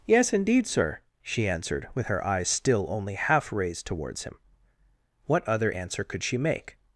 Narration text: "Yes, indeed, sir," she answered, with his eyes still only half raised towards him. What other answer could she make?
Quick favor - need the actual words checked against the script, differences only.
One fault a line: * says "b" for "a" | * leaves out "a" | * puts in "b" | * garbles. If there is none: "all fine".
* says "her" for "his"